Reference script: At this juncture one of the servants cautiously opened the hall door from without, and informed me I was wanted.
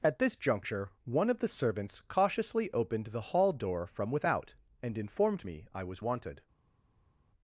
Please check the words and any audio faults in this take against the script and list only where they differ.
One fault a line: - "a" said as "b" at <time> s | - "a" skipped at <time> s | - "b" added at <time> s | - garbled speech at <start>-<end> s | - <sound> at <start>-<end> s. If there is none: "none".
none